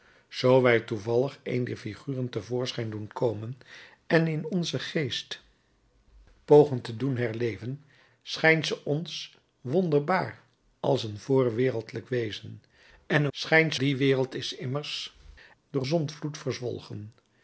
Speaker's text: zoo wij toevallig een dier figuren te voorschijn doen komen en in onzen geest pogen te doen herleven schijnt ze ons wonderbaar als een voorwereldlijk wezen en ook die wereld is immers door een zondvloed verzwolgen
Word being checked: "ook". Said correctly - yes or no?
no